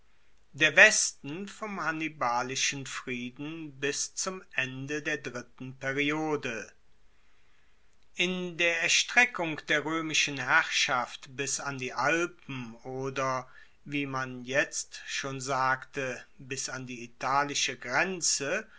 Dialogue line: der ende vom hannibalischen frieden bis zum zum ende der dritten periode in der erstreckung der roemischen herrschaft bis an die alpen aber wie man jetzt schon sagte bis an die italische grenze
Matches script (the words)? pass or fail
fail